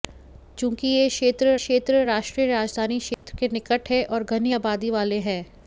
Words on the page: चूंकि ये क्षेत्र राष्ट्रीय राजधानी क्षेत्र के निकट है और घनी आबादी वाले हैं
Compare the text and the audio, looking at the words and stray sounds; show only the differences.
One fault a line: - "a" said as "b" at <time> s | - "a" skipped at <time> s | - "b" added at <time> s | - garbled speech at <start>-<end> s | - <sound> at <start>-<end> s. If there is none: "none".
- "क्षेत्र" added at 1.6 s
- dropout at 3.1-3.2 s